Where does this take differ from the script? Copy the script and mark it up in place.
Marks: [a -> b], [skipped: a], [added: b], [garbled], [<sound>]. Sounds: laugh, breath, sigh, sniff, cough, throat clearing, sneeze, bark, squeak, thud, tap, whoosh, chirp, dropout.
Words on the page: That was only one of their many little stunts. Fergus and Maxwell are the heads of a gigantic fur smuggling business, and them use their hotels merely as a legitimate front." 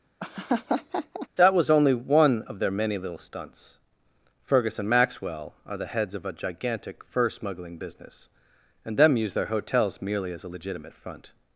[laugh] That was only one of their many little stunts. Fergus and Maxwell are the heads of a gigantic fur smuggling business, and them use their hotels merely as a legitimate front."